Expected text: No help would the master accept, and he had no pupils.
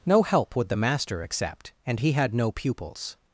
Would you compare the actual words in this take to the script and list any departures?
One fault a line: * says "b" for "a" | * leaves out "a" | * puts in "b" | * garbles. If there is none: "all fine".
all fine